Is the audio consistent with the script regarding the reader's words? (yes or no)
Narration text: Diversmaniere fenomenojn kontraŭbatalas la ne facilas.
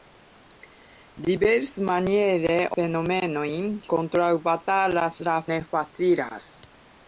yes